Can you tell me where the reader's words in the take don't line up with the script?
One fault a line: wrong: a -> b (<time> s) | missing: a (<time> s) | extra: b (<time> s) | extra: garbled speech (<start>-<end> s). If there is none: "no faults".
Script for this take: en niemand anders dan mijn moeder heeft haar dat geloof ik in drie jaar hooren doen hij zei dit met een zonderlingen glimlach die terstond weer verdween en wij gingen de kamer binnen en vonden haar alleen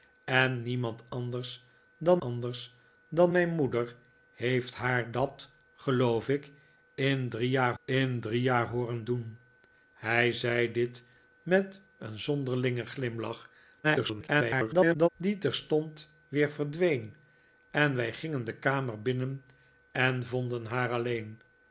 extra: anders dan (2.2 s)
extra: in drie jaar (7.8 s)
extra: garbled speech (13.8-15.1 s)